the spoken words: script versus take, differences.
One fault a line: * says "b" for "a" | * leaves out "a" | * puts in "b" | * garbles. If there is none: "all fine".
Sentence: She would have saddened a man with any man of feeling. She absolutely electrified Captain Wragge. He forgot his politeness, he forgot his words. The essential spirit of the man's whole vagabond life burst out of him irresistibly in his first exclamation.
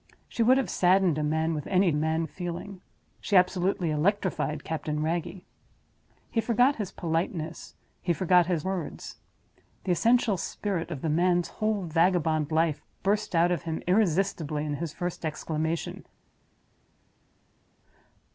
all fine